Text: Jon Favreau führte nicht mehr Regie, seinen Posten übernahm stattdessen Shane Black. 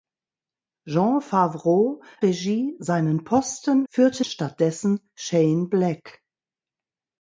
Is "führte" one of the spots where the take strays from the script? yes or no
yes